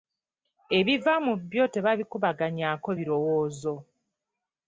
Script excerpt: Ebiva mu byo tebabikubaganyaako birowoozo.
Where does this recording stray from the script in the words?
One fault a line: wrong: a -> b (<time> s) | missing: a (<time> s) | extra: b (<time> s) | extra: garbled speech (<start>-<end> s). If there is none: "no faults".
no faults